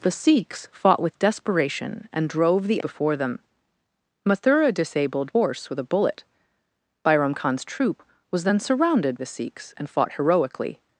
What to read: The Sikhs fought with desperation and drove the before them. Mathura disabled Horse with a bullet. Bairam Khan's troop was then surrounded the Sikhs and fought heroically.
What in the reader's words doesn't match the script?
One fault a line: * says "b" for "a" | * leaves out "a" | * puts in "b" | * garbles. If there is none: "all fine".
all fine